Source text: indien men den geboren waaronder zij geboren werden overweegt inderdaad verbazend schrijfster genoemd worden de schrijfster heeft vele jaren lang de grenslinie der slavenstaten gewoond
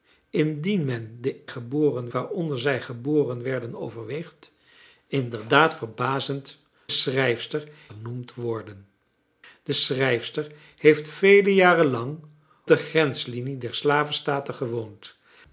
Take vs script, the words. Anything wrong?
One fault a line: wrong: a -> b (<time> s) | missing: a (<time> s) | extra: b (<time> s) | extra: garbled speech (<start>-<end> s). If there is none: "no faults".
no faults